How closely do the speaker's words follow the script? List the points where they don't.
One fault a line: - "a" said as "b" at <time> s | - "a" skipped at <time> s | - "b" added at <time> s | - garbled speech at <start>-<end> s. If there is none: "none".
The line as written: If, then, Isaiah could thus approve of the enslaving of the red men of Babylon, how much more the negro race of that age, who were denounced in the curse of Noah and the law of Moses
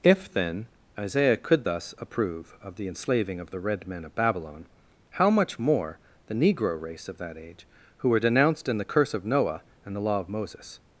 none